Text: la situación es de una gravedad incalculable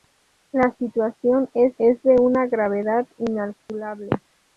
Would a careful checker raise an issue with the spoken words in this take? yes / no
yes